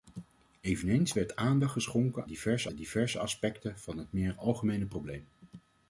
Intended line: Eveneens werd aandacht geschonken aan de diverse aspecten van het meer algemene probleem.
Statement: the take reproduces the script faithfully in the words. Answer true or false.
false